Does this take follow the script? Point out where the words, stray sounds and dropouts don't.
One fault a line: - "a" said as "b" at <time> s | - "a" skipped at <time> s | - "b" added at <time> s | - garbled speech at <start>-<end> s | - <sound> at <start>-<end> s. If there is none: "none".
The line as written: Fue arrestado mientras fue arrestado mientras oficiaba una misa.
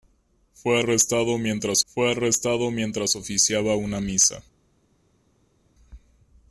none